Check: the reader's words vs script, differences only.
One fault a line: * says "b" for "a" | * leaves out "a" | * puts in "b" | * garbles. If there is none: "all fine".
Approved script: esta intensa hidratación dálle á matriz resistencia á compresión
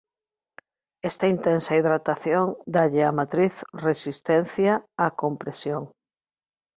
all fine